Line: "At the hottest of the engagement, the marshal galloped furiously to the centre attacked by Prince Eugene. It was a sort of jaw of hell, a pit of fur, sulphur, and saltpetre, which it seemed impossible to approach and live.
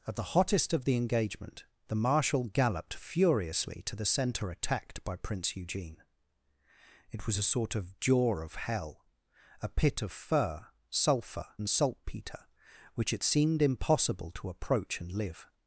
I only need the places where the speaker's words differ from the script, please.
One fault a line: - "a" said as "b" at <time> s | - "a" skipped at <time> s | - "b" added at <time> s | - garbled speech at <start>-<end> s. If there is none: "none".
none